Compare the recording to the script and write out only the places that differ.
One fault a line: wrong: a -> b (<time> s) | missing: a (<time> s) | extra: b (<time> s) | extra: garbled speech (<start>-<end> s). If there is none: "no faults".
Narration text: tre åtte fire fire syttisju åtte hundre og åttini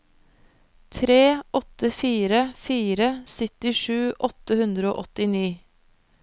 no faults